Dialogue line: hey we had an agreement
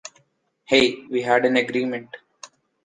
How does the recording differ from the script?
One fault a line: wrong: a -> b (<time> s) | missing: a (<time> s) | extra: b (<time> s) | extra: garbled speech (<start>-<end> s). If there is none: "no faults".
no faults